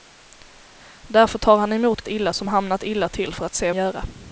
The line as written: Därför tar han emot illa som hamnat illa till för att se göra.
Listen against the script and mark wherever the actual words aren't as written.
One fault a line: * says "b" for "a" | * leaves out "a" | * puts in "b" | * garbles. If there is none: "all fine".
all fine